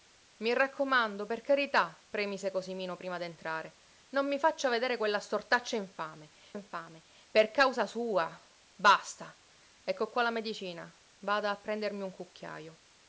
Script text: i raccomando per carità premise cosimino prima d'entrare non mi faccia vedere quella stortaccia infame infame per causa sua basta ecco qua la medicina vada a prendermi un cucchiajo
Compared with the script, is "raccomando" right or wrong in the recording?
right